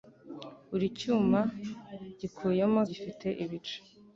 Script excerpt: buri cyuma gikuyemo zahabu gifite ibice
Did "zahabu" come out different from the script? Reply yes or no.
yes